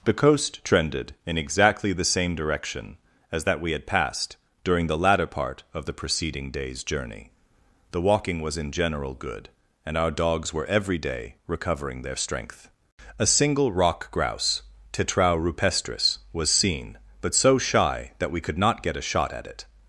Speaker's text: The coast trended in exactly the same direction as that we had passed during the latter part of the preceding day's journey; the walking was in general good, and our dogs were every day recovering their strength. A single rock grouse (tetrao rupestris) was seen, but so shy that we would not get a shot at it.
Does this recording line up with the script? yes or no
no